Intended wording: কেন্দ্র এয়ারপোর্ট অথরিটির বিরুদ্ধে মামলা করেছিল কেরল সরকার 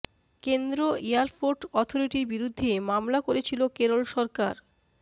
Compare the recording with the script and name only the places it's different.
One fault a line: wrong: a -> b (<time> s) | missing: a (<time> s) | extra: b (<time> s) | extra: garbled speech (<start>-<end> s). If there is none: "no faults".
no faults